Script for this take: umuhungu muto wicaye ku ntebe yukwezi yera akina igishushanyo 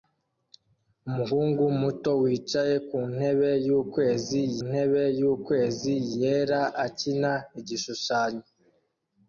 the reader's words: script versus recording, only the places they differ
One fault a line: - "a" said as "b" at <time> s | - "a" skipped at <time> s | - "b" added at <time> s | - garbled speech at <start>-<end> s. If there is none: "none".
- "ntebe yukwezi" added at 4.7 s